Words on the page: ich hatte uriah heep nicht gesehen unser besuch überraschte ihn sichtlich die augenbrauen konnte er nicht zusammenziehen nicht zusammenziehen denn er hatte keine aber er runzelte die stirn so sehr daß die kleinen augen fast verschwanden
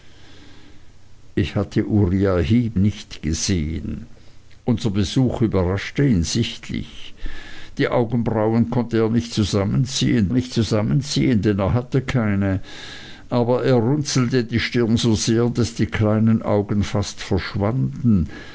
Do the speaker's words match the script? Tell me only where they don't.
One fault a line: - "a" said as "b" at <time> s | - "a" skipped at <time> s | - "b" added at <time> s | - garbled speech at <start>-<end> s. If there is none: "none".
none